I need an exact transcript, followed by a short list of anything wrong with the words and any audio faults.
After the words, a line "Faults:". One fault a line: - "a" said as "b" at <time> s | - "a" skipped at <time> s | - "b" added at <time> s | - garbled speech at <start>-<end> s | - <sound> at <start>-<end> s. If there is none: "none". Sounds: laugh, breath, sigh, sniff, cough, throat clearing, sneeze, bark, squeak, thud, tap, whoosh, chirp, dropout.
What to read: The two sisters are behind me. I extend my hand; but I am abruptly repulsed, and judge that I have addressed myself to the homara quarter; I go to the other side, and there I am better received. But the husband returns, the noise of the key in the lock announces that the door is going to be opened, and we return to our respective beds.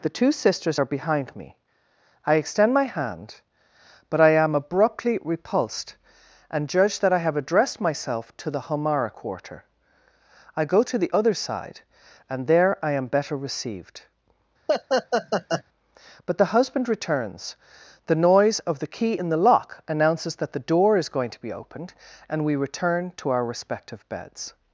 The two sisters are behind me. I extend my hand; but I am abruptly repulsed, and judge that I have addressed myself to the homara quarter; I go to the other side, and there I am better received. But the husband returns, the noise of the key in the lock announces that the door is going to be opened, and we return to our respective beds.
Faults:
- laugh at 14.7-15.6 s